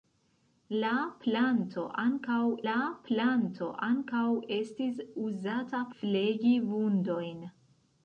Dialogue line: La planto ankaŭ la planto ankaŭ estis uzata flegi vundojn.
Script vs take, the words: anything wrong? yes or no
no